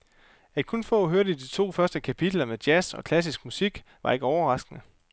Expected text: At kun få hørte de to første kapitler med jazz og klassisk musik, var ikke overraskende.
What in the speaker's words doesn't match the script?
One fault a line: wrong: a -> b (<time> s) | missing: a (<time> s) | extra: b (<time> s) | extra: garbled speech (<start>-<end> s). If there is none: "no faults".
no faults